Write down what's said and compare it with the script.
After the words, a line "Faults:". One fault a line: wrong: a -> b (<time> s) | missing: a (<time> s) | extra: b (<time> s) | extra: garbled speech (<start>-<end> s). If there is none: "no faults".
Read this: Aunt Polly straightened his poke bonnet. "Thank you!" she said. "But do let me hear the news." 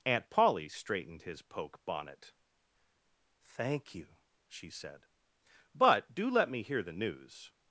Aunt Polly straightened his poke bonnet. "Thank you!" she said. "But do let me hear the news."
Faults:
no faults